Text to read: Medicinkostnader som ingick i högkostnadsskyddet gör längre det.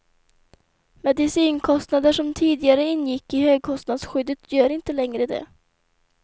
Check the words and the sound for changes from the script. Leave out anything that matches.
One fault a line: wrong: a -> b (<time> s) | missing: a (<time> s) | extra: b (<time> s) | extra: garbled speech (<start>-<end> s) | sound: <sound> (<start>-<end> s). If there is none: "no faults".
extra: tidigare (2.3 s)
extra: inte (4.7 s)